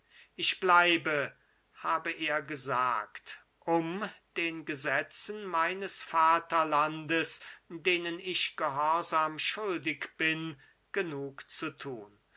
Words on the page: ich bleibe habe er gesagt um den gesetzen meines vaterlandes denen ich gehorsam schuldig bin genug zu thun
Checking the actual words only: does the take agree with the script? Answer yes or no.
yes